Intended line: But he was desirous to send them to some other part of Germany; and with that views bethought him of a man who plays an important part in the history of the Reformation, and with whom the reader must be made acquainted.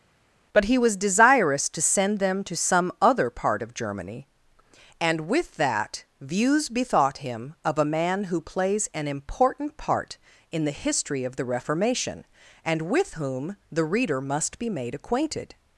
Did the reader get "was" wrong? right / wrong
right